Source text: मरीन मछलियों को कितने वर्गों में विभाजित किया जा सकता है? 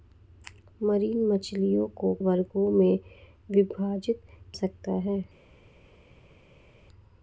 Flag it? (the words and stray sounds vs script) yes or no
yes